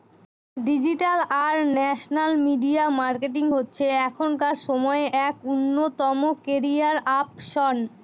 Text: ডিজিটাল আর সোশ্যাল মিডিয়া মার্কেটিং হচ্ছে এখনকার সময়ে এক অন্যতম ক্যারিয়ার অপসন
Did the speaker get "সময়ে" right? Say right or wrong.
right